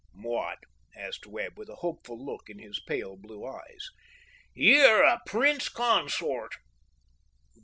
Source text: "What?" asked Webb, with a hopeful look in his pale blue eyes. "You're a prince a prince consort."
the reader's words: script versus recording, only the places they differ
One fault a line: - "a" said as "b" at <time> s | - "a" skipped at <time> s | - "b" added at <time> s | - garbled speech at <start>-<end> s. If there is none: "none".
- "a prince" skipped at 5.7 s